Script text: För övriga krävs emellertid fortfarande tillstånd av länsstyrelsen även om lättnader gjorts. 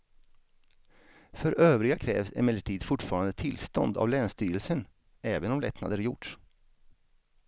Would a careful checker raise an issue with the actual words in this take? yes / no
no